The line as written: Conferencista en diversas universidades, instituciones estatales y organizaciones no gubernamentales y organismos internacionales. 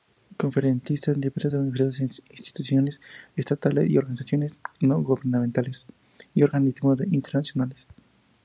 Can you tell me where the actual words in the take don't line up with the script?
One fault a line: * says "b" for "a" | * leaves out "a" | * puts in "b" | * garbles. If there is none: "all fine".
all fine